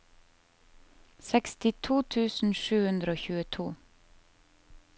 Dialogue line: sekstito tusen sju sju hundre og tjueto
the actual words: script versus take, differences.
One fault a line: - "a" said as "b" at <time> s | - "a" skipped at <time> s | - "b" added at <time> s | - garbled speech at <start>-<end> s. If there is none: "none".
- "sju" skipped at 2.8 s